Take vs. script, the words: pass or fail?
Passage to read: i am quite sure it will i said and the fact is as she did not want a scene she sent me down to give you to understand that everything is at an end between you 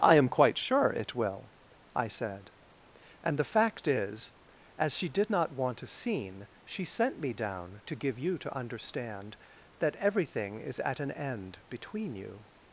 pass